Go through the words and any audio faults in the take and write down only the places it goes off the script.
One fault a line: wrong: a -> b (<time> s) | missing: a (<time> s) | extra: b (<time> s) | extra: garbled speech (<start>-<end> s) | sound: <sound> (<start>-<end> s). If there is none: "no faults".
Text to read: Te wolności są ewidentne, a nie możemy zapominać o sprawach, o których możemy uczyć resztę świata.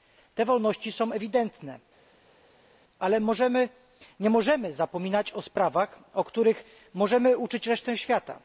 wrong: a -> ale (3.0 s)